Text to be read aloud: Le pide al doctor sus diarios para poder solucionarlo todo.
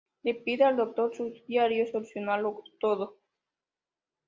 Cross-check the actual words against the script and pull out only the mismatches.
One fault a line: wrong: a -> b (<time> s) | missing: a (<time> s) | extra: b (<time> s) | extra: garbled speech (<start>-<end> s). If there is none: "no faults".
missing: para poder (1.9 s)